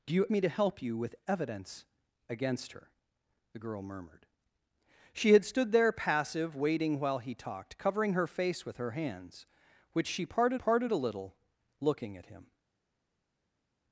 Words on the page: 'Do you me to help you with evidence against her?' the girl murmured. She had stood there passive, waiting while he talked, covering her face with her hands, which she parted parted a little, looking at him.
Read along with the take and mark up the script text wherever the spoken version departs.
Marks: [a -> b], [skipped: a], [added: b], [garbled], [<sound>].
'Do you me to help you with evidence against her?' the girl murmured. She had stood there passive, waiting while he talked, covering her face with her hands, which she parted parted a little, looking at him.